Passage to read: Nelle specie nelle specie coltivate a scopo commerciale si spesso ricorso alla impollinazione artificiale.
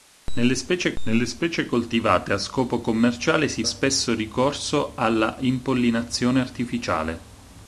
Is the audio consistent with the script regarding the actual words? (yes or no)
yes